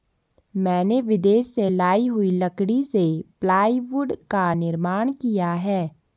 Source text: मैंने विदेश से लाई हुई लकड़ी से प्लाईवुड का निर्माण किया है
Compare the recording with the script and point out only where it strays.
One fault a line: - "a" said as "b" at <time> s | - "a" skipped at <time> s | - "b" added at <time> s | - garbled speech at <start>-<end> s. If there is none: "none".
none